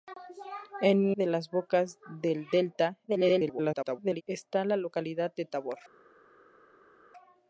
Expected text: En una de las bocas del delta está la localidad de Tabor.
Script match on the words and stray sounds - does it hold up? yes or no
no